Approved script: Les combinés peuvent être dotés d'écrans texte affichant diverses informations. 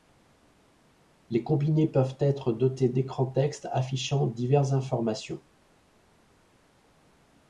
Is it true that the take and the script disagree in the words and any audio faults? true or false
false